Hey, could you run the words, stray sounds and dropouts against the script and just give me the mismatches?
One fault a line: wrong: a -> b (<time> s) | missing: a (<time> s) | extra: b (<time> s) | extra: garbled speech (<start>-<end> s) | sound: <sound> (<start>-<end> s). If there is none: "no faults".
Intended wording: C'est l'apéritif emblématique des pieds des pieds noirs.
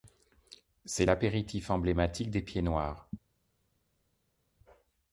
missing: des pieds (2.6 s)